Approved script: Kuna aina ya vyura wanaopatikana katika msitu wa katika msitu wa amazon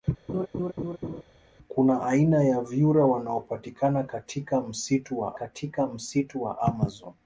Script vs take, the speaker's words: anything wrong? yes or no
no